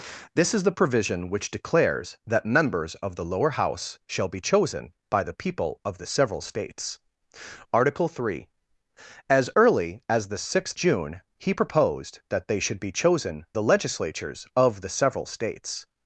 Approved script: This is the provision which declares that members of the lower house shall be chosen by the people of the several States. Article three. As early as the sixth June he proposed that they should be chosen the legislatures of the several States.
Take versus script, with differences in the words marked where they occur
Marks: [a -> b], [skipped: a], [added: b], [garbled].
This is the provision which declares that members of the lower house shall be chosen by the people of the several States. Article three. As early as the sixth June he proposed that they should be chosen the legislatures of the several States.